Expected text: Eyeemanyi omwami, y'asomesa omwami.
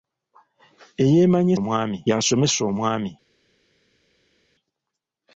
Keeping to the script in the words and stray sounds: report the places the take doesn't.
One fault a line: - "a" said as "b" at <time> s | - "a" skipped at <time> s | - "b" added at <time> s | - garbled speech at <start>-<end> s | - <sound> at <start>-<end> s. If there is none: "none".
none